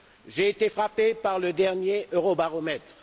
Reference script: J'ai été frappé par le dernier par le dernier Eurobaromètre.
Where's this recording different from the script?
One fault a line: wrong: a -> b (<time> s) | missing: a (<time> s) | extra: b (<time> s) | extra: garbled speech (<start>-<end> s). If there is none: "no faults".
missing: par le dernier (2.1 s)